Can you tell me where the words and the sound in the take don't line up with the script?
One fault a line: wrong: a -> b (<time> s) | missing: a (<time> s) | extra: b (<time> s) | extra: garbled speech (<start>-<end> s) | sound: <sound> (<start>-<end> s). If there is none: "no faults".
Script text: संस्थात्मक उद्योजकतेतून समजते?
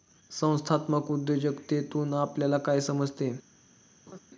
extra: आपल्याला काय (2.1 s)
sound: laugh (4.1-4.2 s)